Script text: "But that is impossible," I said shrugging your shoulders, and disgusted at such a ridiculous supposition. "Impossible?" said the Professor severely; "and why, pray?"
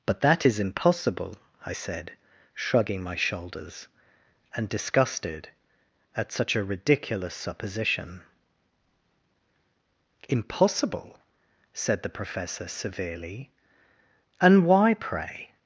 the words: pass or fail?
fail